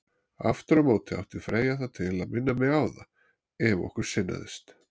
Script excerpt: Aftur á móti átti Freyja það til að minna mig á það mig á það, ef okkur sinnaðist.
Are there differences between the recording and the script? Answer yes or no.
yes